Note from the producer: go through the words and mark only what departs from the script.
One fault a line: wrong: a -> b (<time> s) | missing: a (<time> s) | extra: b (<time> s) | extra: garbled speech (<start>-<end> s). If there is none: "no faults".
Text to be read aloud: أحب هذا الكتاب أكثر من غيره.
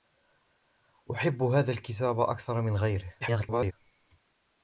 extra: garbled speech (3.2-3.7 s)